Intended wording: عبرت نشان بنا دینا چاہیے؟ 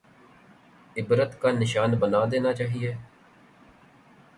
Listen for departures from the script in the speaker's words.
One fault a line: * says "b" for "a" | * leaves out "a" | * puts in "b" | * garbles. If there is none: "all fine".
* puts in "کا"